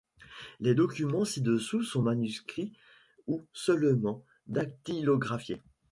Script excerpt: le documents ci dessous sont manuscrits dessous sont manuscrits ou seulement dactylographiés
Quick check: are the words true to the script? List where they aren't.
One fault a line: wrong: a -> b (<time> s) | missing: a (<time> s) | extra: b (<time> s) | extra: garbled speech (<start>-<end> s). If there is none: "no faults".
wrong: le -> les (0.6 s)
missing: dessous sont manuscrits (2.7 s)